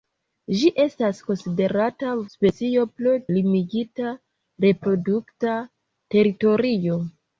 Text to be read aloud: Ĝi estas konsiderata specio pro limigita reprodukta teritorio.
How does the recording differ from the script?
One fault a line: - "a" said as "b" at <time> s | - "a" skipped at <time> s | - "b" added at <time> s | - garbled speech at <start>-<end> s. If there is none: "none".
none